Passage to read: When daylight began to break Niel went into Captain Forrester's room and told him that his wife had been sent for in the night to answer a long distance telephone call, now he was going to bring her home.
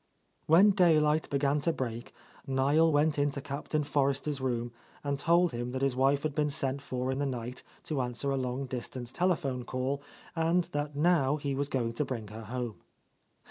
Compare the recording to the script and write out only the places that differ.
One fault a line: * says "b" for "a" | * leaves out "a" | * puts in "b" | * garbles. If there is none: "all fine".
* puts in "and that"